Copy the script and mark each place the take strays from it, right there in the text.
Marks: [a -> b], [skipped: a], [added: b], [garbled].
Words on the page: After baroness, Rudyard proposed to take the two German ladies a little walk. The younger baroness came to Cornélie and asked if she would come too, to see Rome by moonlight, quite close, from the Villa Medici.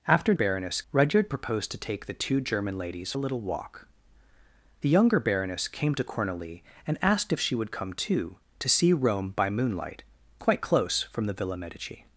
After baroness, Rudyard proposed to take the two German ladies a little walk. The younger baroness came to Cornélie and asked if she would come too, to see Rome by moonlight, quite close, from the Villa Medici.